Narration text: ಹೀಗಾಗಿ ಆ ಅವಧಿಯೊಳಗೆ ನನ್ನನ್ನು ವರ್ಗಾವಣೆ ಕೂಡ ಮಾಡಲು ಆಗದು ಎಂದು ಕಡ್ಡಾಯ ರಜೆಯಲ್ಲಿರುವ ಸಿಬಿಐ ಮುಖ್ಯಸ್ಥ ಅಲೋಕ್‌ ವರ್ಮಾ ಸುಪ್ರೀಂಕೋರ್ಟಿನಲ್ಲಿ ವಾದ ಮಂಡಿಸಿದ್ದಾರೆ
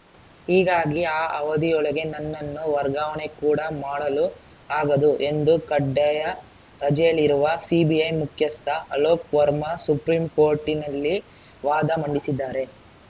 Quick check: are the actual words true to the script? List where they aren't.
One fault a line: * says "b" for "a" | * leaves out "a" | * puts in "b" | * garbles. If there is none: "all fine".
all fine